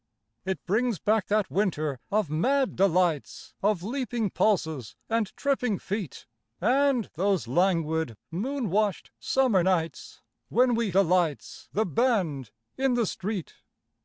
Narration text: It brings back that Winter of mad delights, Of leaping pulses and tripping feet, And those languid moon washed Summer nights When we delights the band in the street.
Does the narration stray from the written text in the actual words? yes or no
no